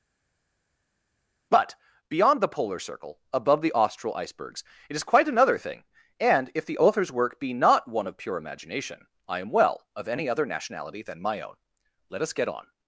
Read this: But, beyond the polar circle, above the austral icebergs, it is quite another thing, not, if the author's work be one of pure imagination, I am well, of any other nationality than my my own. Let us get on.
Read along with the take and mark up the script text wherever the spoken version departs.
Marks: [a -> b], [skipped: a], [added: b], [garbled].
But, beyond the polar circle, above the austral icebergs, it is quite another thing, [not, -> and] if the author's work be [added: not] one of pure imagination, I am well, of any other nationality than my [skipped: my] own. Let us get on.